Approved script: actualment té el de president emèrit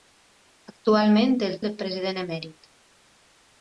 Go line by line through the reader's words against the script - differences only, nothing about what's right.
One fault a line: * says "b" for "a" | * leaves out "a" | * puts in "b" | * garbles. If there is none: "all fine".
all fine